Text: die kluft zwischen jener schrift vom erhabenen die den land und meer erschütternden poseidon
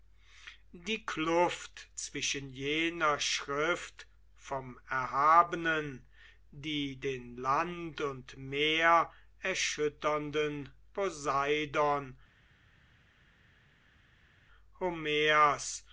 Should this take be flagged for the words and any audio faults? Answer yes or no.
no